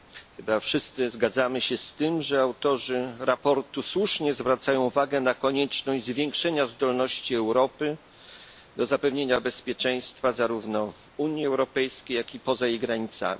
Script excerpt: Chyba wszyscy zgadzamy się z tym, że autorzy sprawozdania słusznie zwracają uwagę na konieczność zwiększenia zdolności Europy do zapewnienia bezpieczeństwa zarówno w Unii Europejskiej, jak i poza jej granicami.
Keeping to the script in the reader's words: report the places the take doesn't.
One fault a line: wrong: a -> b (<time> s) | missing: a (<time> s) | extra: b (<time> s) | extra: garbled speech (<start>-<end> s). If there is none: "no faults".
no faults